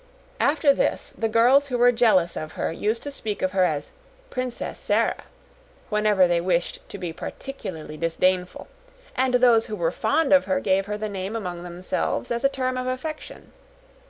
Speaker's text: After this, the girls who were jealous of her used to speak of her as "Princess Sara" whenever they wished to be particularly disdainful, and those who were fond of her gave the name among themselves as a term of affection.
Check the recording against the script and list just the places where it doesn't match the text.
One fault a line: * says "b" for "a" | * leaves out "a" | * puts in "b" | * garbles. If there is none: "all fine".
* puts in "her"